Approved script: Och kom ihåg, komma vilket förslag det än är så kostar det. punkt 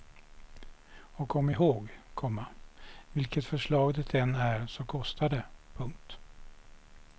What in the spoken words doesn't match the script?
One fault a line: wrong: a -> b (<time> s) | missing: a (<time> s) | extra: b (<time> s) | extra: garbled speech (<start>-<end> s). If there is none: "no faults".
no faults